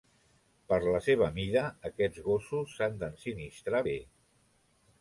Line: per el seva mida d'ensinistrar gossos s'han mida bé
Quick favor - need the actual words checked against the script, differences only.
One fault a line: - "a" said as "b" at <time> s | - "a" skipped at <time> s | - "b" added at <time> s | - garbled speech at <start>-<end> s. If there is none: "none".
- "el" said as "la" at 0.8 s
- "d'ensinistrar" said as "aquests" at 1.9 s
- "mida" said as "d'ensinistrar" at 3.0 s